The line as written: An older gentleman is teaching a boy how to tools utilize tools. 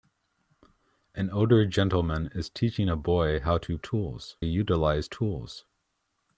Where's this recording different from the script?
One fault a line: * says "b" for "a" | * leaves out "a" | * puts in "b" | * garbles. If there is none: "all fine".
all fine